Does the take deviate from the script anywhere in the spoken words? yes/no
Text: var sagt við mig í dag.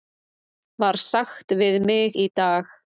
no